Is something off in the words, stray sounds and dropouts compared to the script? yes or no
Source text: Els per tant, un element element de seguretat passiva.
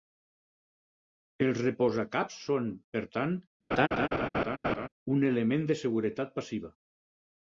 yes